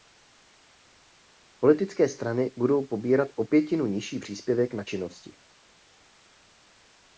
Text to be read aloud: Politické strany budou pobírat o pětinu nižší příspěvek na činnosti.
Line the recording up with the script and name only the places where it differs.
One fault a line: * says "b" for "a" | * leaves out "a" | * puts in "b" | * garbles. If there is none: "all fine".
all fine